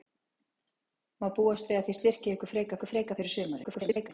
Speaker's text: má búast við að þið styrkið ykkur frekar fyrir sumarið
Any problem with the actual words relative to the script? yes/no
yes